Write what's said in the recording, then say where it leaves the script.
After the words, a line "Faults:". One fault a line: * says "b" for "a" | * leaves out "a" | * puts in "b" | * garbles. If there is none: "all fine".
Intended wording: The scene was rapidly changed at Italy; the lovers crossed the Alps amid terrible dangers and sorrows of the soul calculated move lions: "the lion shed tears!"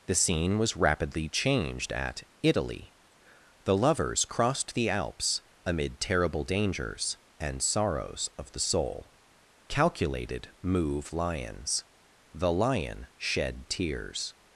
The scene was rapidly changed at Italy; the lovers crossed the Alps amid terrible dangers and sorrows of the soul calculated move lions: "the lion shed tears!"
Faults:
all fine